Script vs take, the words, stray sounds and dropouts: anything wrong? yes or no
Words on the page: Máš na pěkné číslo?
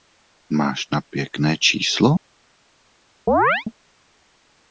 yes